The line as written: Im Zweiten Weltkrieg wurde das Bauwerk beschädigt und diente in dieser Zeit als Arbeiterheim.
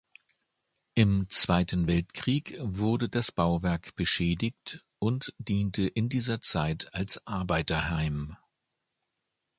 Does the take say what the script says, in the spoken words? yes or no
yes